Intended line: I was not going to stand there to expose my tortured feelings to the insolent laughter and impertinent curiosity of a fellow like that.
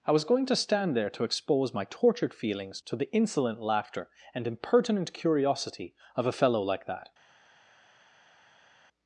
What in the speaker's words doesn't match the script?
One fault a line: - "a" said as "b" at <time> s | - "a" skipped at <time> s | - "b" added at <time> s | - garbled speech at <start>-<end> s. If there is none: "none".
- "not" skipped at 0.2 s